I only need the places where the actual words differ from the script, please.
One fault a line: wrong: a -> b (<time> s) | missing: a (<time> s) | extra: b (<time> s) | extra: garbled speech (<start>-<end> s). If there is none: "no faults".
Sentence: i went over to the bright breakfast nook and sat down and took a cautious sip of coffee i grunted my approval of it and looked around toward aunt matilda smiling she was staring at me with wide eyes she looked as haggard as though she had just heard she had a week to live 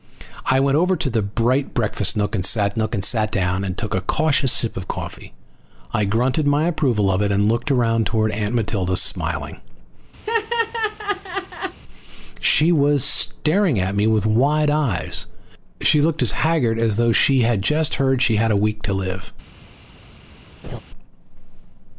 extra: nook and sat (2.8 s)